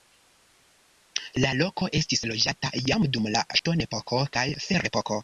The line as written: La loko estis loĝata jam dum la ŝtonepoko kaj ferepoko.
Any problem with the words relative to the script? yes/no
no